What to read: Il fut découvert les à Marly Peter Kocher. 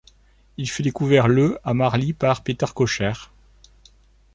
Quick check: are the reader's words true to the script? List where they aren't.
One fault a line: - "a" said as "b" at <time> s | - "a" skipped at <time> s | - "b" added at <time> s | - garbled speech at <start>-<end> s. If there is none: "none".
- "les" said as "le" at 1.3 s
- "par" added at 2.1 s